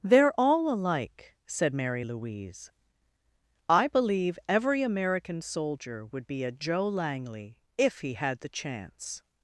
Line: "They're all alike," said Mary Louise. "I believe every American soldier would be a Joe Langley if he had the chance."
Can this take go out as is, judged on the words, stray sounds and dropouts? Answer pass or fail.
pass